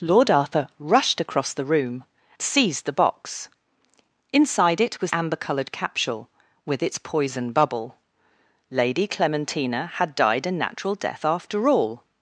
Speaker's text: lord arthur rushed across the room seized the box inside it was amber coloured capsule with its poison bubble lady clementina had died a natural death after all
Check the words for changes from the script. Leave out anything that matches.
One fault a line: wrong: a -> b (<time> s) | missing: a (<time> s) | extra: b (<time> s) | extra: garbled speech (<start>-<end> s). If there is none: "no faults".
no faults